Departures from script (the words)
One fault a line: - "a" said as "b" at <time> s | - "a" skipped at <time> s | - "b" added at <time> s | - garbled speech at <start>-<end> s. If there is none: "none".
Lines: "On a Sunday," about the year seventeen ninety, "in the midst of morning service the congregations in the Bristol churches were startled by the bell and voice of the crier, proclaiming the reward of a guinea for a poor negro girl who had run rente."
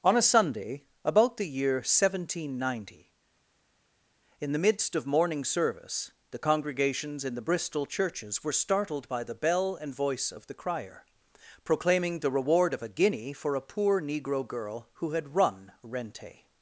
none